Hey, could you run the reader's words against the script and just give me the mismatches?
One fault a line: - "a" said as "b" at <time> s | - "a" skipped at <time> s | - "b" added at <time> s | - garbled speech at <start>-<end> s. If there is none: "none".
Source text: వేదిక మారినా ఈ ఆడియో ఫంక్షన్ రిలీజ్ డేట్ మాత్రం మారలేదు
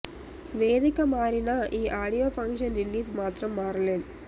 - "డేట్" skipped at 3.1 s